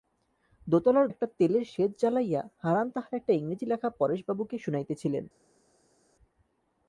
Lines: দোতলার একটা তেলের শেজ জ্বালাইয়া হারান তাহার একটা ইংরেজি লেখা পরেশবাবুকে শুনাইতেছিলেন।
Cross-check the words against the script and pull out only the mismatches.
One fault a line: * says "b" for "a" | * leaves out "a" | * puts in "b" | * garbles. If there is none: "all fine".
all fine